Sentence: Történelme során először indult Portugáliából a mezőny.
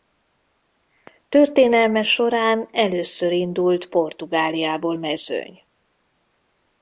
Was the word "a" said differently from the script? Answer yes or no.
yes